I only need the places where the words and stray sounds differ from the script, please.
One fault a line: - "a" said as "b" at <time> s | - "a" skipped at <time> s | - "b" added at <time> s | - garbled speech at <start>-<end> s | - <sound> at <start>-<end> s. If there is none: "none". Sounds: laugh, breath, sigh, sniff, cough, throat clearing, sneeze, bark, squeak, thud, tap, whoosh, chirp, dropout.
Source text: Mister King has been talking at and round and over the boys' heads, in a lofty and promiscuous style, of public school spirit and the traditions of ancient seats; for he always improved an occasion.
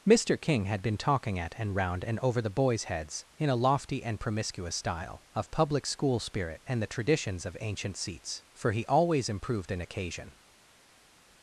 - "has" said as "had" at 0.7 s